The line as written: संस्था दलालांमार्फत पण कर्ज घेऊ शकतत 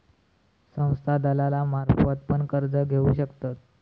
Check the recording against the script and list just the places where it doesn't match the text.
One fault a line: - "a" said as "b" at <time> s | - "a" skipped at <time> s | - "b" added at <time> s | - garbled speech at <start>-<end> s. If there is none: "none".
none